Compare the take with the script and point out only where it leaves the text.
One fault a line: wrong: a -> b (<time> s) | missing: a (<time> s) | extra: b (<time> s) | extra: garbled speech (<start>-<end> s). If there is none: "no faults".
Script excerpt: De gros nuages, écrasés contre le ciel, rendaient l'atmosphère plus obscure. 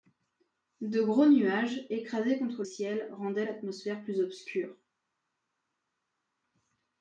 missing: le (2.6 s)